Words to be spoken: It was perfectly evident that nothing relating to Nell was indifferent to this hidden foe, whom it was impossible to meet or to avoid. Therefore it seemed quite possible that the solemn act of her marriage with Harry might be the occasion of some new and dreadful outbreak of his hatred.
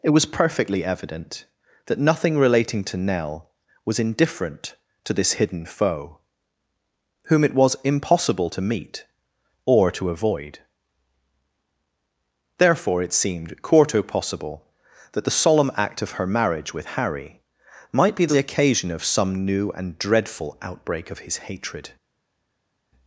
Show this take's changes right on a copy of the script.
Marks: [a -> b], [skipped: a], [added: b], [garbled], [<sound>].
It was perfectly evident that nothing relating to Nell was indifferent to this hidden foe, whom it was impossible to meet or to avoid. Therefore it seemed [quite -> quarto] possible that the solemn act of her marriage with Harry might be the occasion of some new and dreadful outbreak of his hatred.